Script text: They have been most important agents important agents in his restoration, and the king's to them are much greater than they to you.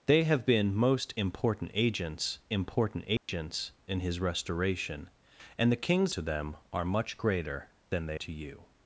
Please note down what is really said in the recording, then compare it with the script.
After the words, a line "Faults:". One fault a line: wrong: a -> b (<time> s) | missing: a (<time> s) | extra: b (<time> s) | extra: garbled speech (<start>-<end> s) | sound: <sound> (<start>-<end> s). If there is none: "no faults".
They have been most important agents important agents in his restoration, and the king's to them are much greater than they to you.
Faults:
sound: dropout (3.2-3.3 s)